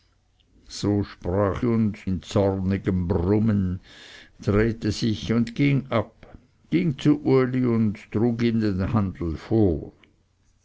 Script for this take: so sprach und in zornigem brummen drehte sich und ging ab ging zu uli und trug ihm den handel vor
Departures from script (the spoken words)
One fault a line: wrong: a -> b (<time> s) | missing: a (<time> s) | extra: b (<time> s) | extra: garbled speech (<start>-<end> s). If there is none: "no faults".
no faults